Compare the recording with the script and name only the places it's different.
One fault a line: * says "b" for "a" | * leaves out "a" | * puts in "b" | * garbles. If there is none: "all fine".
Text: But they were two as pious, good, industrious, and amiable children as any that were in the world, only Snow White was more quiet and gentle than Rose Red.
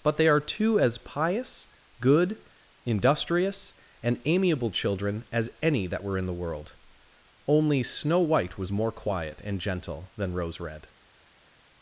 * says "are" for "were"